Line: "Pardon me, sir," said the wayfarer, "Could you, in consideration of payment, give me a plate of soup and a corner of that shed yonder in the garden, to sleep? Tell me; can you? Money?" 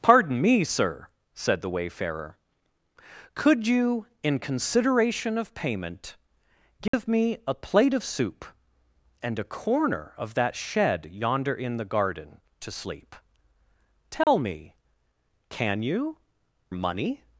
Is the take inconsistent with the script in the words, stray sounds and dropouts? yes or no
yes